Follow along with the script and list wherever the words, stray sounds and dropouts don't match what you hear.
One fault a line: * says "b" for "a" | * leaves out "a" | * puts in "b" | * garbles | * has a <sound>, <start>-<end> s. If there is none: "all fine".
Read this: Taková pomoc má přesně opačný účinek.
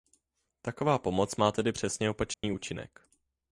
* puts in "tedy"
* has a dropout, 2.3-2.4 s